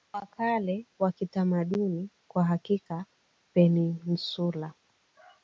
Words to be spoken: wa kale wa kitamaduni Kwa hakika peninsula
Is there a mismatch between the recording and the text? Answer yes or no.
no